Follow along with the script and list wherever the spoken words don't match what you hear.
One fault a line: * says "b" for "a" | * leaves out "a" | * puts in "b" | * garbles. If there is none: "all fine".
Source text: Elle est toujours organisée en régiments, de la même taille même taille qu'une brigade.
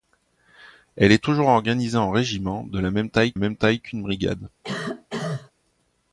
all fine